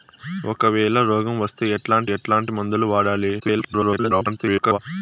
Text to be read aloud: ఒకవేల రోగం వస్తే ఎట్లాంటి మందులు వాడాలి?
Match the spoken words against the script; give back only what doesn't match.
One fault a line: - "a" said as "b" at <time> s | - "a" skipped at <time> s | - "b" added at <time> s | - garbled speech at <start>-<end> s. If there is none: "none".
- "ఎట్లాంటి" added at 2.1 s
- garbled speech at 3.4-4.8 s